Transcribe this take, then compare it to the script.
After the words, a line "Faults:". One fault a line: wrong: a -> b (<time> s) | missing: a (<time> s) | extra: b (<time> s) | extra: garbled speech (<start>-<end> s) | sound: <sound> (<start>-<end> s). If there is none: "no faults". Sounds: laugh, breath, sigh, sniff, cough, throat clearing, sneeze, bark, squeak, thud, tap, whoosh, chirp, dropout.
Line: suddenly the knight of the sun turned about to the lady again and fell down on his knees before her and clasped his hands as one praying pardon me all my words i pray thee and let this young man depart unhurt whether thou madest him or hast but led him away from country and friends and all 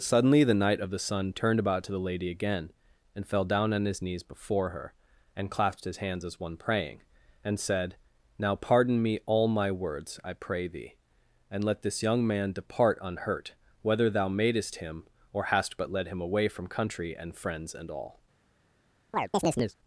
suddenly the knight of the sun turned about to the lady again and fell down on his knees before her and clasped his hands as one praying and said now pardon me all my words i pray thee and let this young man depart unhurt whether thou madest him or hast but led him away from country and friends and all
Faults:
extra: and said now (7.4 s)
sound: chirp (19.1-19.8 s)